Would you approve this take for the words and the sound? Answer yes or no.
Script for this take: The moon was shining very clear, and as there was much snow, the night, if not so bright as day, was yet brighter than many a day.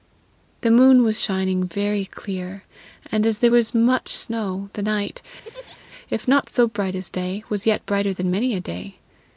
no